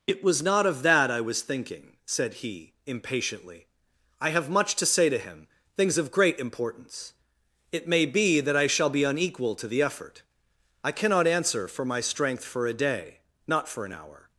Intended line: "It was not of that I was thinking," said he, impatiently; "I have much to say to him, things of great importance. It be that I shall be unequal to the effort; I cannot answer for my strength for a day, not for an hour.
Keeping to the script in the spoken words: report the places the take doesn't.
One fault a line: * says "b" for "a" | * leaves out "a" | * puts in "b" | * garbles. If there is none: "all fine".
* puts in "may"